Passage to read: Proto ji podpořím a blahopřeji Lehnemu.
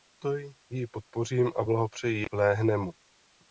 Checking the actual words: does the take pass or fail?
pass